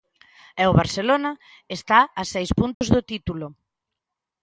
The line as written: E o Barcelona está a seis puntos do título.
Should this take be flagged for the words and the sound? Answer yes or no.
yes